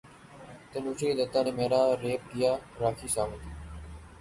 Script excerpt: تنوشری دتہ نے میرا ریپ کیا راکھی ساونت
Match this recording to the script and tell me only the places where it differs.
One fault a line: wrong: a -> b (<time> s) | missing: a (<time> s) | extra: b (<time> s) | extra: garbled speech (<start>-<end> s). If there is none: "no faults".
no faults